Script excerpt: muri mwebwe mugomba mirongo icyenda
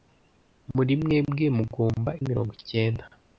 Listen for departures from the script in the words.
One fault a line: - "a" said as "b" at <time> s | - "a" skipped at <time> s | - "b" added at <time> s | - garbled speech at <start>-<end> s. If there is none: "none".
none